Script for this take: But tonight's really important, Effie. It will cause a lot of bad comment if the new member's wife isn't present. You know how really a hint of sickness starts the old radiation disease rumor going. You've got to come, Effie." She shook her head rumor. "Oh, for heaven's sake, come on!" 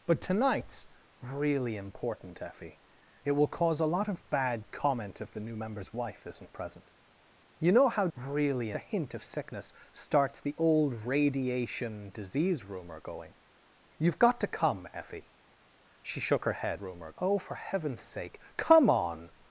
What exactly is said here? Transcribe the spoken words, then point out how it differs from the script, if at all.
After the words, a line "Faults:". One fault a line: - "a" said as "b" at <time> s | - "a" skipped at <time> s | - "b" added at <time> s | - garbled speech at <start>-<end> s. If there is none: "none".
But tonight's really important, Effie. It will cause a lot of bad comment if the new member's wife isn't present. You know how really a hint of sickness starts the old radiation disease rumor going. You've got to come, Effie." She shook her head rumor. "Oh, for heaven's sake, come on!"
Faults:
none